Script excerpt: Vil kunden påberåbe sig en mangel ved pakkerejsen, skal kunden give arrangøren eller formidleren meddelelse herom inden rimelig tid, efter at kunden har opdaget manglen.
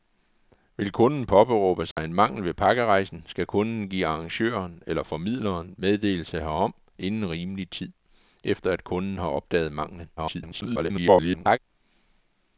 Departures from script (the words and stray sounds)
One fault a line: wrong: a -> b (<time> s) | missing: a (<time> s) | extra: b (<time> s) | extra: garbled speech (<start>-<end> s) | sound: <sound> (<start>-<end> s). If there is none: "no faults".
sound: dropout (1.9-2.0 s)
extra: garbled speech (10.2-11.6 s)